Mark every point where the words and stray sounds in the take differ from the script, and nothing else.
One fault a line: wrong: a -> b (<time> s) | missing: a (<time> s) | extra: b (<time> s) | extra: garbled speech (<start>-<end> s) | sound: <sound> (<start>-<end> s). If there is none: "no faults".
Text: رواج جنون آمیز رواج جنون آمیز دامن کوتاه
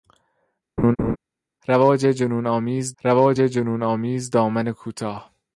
sound: laugh (0.8-1.2 s)